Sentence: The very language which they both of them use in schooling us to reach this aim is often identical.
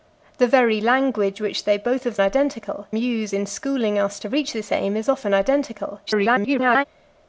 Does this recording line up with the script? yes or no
no